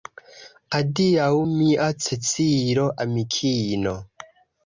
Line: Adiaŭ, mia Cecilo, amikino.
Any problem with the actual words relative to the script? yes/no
no